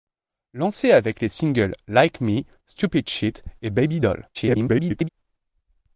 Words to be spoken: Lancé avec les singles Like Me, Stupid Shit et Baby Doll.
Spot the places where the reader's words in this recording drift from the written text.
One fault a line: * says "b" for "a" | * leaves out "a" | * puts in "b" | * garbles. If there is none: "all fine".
* garbles